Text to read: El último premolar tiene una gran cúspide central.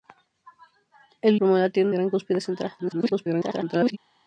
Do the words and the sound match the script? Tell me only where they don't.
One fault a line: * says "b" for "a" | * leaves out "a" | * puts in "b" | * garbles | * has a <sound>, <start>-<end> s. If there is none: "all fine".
* leaves out "último"
* leaves out "una"
* garbles